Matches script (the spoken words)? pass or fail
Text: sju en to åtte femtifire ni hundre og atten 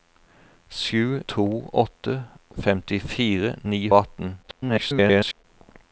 fail